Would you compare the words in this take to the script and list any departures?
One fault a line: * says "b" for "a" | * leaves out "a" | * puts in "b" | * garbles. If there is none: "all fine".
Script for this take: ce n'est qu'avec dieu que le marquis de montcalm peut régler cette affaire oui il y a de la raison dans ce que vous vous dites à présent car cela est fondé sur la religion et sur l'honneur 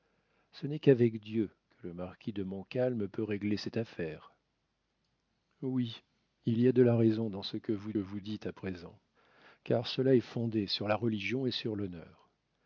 all fine